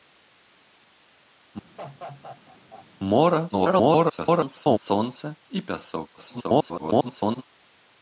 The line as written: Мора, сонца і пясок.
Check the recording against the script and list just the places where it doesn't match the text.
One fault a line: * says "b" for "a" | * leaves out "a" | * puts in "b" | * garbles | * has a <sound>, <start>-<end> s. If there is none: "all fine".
* has a laugh, 1.8-2.9 s
* garbles
* garbles